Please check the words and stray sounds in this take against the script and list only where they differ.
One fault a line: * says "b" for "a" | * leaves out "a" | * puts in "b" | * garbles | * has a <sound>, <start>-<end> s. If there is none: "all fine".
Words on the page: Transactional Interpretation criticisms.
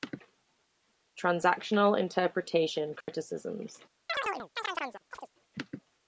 * has a dropout, 3.0-3.1 s
* has a chirp, 4.1-5.3 s